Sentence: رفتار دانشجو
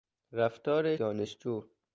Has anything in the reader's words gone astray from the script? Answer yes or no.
no